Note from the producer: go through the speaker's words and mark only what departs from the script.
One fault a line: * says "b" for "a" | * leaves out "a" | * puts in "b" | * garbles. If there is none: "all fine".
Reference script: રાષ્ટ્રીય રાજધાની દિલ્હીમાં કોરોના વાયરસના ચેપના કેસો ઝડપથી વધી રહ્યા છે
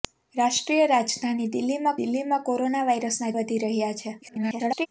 * puts in "દિલ્હીમાં"
* leaves out "ચેપના કેસો ઝડપથી"
* garbles